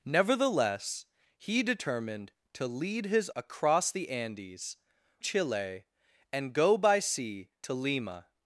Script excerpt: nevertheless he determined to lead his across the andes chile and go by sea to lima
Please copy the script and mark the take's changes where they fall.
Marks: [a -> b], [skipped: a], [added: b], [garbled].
nevertheless he determined to lead his across the andes chile and go by sea to lima